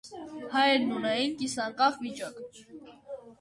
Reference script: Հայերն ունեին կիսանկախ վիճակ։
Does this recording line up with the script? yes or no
yes